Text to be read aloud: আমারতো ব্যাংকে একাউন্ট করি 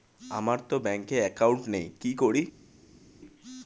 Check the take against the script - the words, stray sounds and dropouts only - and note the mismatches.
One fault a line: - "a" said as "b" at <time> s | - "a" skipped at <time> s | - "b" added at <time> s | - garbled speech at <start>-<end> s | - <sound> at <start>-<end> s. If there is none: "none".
- "নেই কি" added at 1.7 s